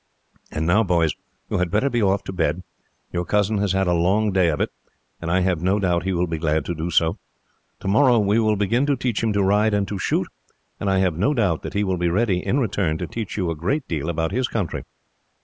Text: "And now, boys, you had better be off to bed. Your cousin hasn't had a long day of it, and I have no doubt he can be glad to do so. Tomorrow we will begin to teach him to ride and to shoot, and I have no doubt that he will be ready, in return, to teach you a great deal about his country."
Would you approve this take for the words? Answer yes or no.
no